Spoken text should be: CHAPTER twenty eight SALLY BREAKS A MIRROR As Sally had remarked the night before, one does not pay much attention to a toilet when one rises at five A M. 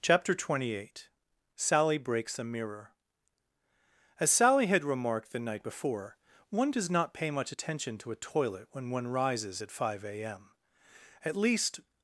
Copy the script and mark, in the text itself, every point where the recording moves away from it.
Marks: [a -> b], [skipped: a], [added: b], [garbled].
CHAPTER twenty eight SALLY BREAKS A MIRROR As Sally had remarked the night before, one does not pay much attention to a toilet when one rises at five A M. [added: At least]